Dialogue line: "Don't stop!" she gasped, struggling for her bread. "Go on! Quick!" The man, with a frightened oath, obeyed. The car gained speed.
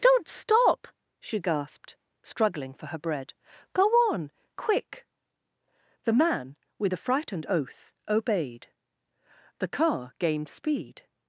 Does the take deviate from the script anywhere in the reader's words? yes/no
no